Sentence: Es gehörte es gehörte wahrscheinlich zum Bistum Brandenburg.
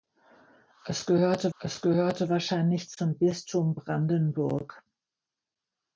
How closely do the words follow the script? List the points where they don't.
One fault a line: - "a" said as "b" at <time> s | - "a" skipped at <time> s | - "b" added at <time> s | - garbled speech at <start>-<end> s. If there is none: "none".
none